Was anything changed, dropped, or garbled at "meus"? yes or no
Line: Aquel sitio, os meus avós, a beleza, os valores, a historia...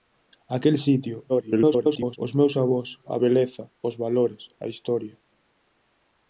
no